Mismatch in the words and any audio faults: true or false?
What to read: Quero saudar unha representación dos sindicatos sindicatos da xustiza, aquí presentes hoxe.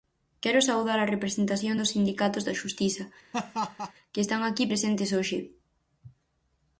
true